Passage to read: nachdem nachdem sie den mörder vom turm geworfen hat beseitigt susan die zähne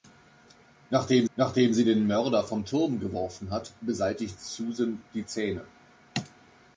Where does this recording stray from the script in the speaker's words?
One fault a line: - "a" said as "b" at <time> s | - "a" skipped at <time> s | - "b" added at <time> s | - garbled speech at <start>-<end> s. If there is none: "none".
none